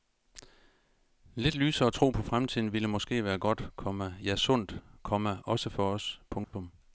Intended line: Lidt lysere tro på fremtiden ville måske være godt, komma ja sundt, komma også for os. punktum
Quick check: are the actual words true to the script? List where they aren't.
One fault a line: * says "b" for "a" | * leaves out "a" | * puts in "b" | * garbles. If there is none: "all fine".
all fine